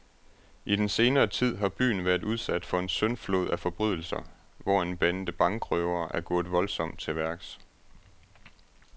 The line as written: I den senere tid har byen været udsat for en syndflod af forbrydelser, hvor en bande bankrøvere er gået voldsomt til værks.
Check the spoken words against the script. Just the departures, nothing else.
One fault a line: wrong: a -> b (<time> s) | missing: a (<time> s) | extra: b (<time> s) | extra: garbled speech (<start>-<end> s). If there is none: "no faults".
no faults